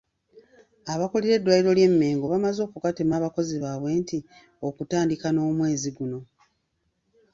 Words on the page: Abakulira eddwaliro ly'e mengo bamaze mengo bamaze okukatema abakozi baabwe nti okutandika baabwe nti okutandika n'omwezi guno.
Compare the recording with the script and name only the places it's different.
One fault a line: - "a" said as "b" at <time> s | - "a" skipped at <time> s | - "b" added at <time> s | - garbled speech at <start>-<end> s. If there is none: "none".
- "mengo bamaze" skipped at 2.6 s
- "baabwe nti okutandika" skipped at 5.3 s